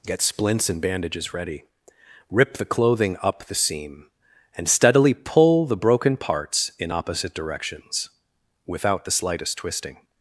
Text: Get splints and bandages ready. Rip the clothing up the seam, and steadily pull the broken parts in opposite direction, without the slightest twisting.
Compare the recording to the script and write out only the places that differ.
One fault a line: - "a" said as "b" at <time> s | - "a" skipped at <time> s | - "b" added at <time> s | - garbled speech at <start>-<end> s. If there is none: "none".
- "direction" said as "directions" at 7.3 s